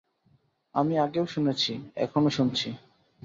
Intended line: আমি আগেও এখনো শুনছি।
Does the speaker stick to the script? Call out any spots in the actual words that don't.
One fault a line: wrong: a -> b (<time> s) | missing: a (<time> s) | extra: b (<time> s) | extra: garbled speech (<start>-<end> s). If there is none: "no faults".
extra: শুনেছি (1.2 s)